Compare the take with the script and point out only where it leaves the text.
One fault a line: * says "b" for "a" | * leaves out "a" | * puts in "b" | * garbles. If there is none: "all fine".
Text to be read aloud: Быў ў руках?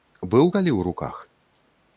* puts in "калі"